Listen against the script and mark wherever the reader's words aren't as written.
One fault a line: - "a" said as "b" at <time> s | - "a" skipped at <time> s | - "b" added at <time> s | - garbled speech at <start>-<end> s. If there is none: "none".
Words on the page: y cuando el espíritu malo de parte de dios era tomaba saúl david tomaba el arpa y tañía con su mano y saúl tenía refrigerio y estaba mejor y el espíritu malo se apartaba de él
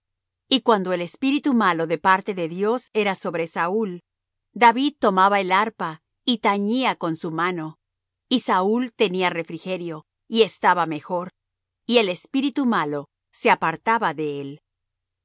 - "tomaba" said as "sobre" at 3.1 s